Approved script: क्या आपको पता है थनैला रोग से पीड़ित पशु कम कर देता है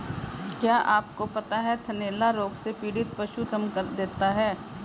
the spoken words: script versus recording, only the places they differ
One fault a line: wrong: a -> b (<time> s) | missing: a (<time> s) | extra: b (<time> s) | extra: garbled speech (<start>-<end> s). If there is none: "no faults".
no faults